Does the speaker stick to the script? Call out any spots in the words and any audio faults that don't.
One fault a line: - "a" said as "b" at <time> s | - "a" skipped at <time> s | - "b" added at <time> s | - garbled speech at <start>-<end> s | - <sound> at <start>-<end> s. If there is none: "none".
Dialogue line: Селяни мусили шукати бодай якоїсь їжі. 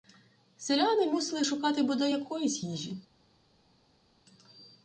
none